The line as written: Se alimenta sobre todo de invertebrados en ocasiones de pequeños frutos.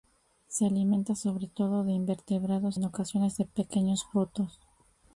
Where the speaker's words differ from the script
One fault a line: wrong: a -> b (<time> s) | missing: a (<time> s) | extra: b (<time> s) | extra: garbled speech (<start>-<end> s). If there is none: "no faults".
no faults